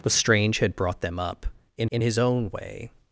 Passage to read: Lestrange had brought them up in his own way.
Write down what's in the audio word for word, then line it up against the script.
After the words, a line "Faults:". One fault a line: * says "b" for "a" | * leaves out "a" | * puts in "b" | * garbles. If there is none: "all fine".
Lestrange had brought them up in in his own way.
Faults:
* puts in "in"